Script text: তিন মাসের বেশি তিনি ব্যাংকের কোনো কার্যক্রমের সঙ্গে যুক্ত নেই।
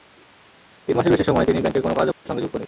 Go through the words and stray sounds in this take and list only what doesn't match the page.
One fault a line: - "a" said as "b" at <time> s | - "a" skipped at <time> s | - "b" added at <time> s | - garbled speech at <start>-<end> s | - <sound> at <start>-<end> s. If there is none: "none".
- "সময়" added at 1.2 s
- dropout at 2.1-2.3 s